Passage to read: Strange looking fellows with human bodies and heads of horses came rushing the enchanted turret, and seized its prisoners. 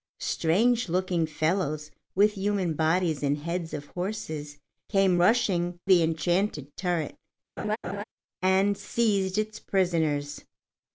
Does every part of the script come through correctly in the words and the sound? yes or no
no